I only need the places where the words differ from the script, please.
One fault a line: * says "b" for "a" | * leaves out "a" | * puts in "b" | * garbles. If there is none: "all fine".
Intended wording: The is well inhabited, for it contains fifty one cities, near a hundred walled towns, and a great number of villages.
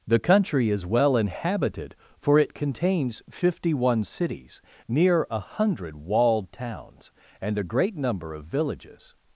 * puts in "country"